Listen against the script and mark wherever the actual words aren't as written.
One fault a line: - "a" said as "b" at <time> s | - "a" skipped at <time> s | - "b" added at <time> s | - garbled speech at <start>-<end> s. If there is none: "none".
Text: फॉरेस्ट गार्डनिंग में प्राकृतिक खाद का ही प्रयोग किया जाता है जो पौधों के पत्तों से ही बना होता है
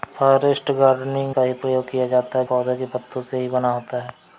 - "में प्राकृतिक खाद" skipped at 1.4 s
- "जो" skipped at 2.4 s